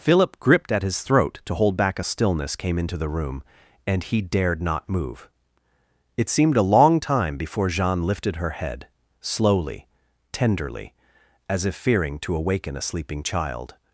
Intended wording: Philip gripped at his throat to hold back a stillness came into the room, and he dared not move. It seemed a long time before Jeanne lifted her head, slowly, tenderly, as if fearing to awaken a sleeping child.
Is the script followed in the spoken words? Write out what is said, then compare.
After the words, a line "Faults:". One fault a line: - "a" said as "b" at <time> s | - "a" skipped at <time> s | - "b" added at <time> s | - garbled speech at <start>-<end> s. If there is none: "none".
Philip gripped at his throat to hold back a stillness came into the room, and he dared not move. It seemed a long time before Jeanne lifted her head, slowly, tenderly, as if fearing to awaken a sleeping child.
Faults:
none